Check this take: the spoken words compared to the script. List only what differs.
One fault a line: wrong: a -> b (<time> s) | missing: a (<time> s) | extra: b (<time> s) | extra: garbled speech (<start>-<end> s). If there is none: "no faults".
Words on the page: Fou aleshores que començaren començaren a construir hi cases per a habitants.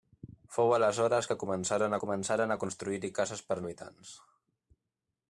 no faults